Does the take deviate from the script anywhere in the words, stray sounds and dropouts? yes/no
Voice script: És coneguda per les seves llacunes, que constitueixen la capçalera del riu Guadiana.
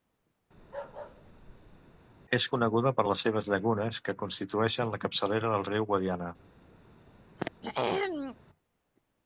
yes